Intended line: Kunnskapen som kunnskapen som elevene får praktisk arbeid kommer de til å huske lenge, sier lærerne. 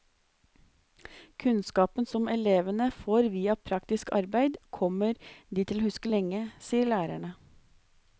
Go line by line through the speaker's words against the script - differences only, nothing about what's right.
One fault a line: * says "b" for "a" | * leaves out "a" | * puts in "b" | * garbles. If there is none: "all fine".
* leaves out "kunnskapen som"
* puts in "via"